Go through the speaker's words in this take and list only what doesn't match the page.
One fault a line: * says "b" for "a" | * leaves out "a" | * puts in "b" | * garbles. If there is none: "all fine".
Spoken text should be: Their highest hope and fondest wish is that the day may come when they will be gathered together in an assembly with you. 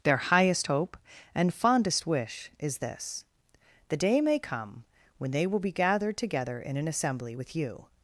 * says "this" for "that"